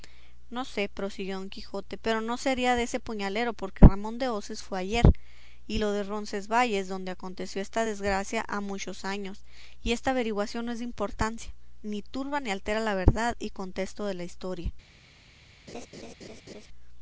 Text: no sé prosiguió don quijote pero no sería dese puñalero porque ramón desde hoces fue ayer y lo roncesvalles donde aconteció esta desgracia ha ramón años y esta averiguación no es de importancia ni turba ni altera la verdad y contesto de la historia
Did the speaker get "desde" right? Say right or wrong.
wrong